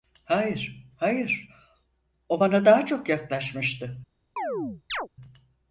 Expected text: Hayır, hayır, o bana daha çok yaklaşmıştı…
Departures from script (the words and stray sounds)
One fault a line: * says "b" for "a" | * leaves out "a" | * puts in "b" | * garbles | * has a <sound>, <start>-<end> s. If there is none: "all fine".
* has a chirp, 4.4-5.1 s